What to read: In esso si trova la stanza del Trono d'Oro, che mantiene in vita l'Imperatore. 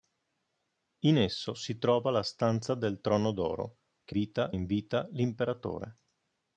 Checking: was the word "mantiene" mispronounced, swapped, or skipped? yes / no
yes